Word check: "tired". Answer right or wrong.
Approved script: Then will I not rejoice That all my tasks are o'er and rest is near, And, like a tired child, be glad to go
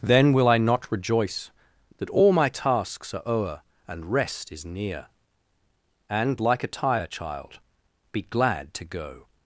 wrong